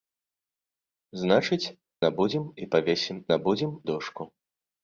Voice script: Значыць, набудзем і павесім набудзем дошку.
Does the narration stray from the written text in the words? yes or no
no